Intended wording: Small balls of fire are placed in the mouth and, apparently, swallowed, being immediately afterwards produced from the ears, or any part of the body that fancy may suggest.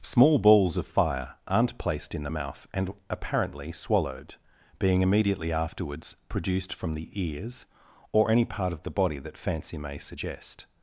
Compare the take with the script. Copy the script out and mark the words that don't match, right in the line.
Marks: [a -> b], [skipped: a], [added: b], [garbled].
Small balls of fire [are -> aren't] placed in the mouth and, apparently, swallowed, being immediately afterwards produced from the ears, or any part of the body that fancy may suggest.